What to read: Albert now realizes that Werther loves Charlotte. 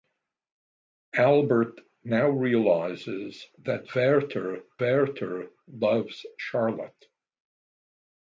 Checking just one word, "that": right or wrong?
right